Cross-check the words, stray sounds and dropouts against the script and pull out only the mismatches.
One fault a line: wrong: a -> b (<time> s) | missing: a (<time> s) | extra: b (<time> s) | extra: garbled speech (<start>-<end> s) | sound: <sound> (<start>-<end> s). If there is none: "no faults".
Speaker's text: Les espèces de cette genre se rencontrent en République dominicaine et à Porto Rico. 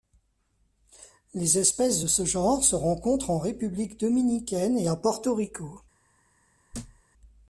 wrong: cette -> ce (2.1 s)
sound: thud (6.7-7.0 s)